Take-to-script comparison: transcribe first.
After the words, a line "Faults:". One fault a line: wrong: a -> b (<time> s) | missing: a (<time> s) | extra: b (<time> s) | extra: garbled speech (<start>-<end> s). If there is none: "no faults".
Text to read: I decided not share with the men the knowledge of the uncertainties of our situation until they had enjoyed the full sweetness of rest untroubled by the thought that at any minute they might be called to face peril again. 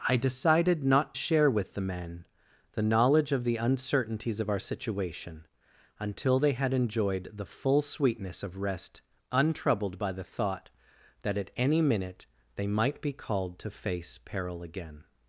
I decided not share with the men the knowledge of the uncertainties of our situation until they had enjoyed the full sweetness of rest untroubled by the thought that at any minute they might be called to face peril again.
Faults:
no faults